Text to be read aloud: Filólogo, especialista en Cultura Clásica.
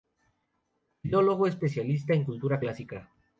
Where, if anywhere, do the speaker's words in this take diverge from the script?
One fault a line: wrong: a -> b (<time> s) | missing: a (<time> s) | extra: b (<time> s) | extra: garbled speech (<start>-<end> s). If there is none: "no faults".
no faults